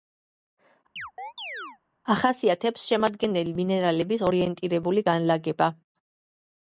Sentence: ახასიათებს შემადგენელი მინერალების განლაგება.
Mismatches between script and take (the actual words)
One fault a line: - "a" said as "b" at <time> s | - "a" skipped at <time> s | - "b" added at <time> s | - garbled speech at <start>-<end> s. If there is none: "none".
- "ორიენტირებული" added at 4.3 s